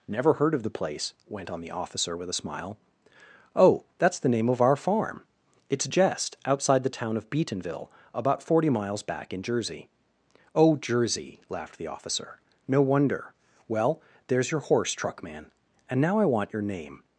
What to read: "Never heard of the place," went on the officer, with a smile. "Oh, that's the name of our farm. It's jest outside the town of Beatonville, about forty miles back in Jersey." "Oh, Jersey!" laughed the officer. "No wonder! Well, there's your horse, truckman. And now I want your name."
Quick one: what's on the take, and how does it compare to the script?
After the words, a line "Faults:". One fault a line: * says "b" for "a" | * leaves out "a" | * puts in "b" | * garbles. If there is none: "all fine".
"Never heard of the place," went on the officer, with a smile. "Oh, that's the name of our farm. It's jest outside the town of Beatonville, about forty miles back in Jersey." "Oh, Jersey!" laughed the officer. "No wonder! Well, there's your horse, truckman. And now I want your name."
Faults:
all fine